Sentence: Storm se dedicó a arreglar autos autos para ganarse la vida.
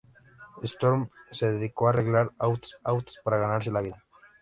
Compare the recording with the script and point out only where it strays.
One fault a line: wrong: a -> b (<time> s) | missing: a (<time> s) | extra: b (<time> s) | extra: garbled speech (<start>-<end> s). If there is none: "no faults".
no faults